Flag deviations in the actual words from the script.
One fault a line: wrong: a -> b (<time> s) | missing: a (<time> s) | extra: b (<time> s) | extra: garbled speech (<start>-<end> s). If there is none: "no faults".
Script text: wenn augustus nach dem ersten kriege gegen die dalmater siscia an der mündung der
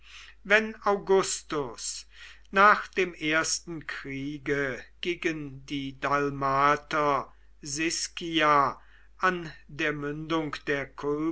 no faults